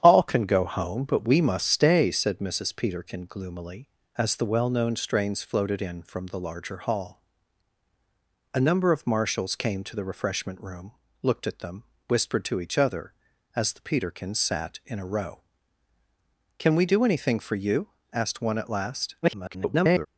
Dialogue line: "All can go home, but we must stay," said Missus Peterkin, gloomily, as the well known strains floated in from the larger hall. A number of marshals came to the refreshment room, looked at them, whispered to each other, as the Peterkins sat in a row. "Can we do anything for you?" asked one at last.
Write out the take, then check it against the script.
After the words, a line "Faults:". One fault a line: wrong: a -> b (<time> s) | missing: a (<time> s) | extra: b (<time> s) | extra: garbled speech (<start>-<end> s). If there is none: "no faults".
"All can go home, but we must stay," said Missus Peterkin, gloomily, as the well known strains floated in from the larger hall. A number of marshals came to the refreshment room, looked at them, whispered to each other, as the Peterkins sat in a row. "Can we do anything for you?" asked one at last. [garbled]
Faults:
extra: garbled speech (19.2-20.1 s)